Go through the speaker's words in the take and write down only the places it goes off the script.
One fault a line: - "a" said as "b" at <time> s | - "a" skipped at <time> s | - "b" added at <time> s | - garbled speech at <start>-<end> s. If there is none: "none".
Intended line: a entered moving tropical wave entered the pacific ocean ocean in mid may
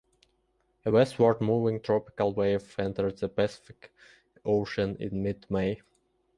- "entered" said as "westward" at 0.9 s
- "ocean" skipped at 5.0 s